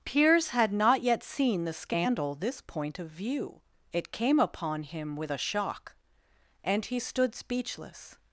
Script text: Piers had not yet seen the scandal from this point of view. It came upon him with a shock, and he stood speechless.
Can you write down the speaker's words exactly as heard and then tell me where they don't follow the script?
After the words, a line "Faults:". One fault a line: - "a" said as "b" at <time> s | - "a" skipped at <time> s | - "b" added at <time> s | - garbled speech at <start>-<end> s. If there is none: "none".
Piers had not yet seen the scandal this point of view. It came upon him with a shock, and he stood speechless.
Faults:
- "from" skipped at 2.3 s